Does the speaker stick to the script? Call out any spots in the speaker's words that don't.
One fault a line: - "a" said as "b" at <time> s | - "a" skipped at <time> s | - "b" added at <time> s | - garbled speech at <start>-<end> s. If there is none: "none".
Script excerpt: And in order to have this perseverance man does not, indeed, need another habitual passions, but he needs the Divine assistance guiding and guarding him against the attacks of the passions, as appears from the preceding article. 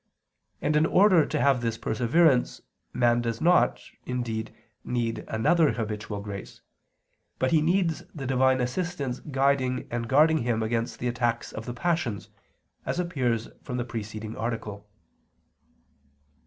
- "passions" said as "grace" at 6.2 s